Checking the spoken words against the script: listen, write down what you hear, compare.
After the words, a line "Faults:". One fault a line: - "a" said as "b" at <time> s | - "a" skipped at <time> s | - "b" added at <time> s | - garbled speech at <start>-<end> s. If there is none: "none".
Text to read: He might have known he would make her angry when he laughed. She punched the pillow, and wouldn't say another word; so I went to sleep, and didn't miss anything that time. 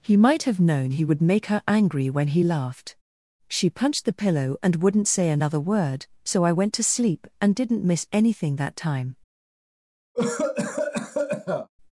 He might have known he would make her angry when he laughed. She punched the pillow, and wouldn't say another word; so I went to sleep, and didn't miss anything that time.
Faults:
none